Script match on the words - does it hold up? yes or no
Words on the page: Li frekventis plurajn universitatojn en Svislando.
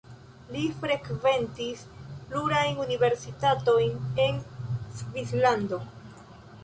yes